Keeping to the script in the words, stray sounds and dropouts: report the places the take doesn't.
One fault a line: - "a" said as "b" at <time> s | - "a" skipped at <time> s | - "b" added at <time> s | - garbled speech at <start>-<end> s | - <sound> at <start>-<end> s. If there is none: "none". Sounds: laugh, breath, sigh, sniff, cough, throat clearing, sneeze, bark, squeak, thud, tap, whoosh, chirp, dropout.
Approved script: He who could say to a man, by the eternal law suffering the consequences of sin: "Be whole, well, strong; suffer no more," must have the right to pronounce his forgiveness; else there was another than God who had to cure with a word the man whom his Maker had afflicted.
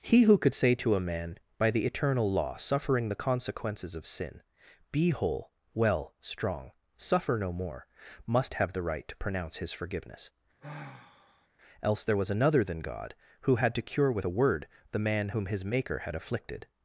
- sigh at 10.6-11.5 s